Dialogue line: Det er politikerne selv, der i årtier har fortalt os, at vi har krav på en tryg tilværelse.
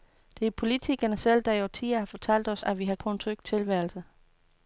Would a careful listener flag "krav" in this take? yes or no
yes